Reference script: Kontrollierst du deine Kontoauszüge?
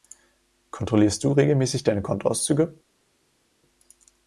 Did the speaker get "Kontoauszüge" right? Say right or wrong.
right